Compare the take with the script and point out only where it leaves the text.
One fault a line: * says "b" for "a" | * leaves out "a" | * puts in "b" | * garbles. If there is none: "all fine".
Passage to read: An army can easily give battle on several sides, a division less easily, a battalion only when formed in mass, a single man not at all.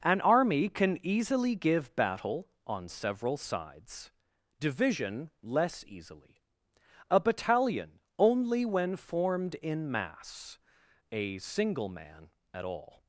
* leaves out "a"
* leaves out "not"